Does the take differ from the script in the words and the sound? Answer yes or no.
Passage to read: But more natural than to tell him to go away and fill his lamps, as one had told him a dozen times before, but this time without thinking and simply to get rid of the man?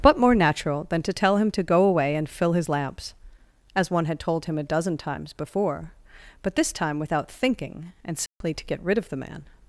yes